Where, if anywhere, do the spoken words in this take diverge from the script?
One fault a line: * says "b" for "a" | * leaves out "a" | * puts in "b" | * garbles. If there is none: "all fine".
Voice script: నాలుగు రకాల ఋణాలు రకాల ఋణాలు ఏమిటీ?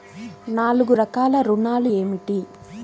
* leaves out "రకాల ఋణాలు"